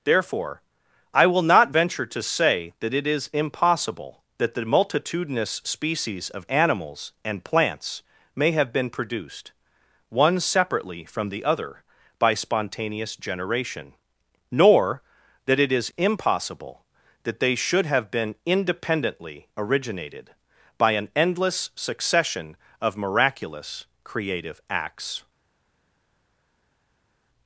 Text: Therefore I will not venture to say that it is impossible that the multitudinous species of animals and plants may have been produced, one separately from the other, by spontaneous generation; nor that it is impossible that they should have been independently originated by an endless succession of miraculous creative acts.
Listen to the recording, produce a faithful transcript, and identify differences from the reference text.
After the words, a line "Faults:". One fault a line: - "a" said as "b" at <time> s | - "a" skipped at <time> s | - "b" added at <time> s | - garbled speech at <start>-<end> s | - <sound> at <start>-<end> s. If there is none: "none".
Therefore I will not venture to say that it is impossible that the multitudinous species of animals and plants may have been produced, one separately from the other, by spontaneous generation; nor that it is impossible that they should have been independently originated by an endless succession of miraculous creative acts.
Faults:
none